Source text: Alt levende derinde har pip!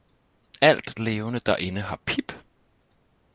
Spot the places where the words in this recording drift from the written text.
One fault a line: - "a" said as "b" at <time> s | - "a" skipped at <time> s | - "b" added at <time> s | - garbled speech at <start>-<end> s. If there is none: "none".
none